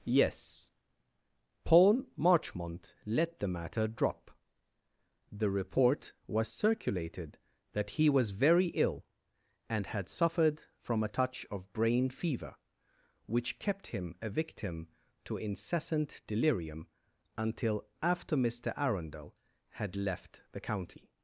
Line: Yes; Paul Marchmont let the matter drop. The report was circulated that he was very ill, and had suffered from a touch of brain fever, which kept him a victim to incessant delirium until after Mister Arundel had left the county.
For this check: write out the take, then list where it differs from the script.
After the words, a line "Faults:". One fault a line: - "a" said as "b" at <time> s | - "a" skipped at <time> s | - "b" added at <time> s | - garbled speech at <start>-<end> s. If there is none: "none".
Yes; Paul Marchmont let the matter drop. The report was circulated that he was very ill, and had suffered from a touch of brain fever, which kept him a victim to incessant delirium until after Mister Arundel had left the county.
Faults:
none